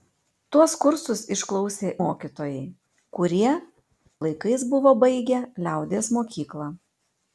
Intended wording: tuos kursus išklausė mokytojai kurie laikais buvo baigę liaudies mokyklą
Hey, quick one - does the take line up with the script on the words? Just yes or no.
yes